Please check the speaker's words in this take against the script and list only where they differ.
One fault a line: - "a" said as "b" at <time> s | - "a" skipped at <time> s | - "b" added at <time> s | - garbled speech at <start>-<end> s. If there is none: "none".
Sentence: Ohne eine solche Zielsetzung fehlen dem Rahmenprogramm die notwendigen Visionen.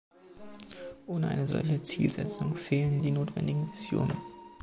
- "dem Rahmenprogramm" skipped at 3.0 s